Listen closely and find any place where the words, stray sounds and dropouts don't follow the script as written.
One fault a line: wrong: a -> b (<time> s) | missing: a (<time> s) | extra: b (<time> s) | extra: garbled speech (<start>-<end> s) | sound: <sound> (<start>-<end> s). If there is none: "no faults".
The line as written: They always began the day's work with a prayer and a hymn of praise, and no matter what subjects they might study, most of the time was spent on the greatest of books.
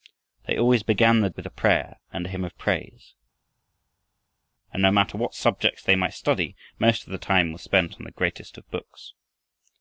missing: day's work (1.3 s)